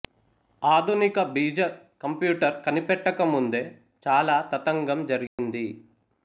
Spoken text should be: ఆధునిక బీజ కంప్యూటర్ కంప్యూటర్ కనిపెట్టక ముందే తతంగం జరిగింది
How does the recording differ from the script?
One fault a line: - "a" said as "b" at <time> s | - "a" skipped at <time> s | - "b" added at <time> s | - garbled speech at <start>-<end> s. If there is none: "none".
- "కంప్యూటర్" skipped at 2.6 s
- "చాలా" added at 4.0 s